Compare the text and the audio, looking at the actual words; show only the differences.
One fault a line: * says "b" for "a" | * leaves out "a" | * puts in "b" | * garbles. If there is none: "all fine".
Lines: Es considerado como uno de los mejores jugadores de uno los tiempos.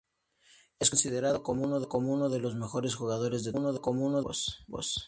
all fine